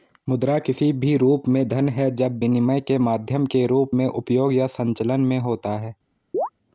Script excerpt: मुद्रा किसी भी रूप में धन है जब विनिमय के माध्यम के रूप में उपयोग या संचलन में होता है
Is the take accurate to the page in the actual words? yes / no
yes